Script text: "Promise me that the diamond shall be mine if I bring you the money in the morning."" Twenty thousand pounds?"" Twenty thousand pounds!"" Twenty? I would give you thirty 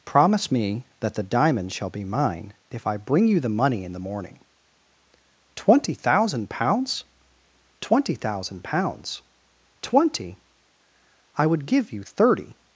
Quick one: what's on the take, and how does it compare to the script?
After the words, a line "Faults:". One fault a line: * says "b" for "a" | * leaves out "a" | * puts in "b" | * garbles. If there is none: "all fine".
"Promise me that the diamond shall be mine if I bring you the money in the morning."" Twenty thousand pounds?"" Twenty thousand pounds!"" Twenty? I would give you thirty
Faults:
all fine